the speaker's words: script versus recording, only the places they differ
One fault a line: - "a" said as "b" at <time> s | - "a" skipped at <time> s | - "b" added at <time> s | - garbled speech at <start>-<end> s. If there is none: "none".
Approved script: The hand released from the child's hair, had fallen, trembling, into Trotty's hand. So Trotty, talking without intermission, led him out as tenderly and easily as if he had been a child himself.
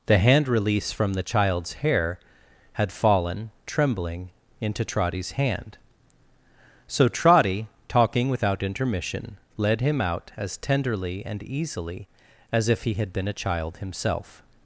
- "released" said as "release" at 0.5 s